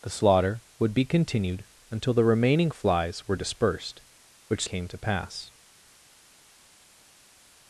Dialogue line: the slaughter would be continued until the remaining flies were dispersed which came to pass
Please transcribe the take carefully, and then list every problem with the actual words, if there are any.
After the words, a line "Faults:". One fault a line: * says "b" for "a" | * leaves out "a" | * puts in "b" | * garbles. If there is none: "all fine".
the slaughter would be continued until the remaining flies were dispersed which came to pass
Faults:
all fine